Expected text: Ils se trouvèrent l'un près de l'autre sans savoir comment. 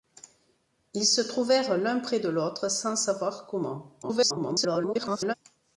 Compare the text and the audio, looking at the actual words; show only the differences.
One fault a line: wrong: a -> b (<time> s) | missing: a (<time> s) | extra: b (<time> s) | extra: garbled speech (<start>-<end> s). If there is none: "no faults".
extra: garbled speech (4.0-5.3 s)